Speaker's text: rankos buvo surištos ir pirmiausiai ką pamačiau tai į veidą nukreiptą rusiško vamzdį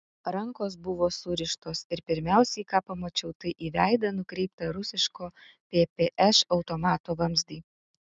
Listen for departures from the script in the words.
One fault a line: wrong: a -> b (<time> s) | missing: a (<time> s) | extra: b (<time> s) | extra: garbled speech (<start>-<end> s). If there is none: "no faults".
extra: ppš automato (5.5 s)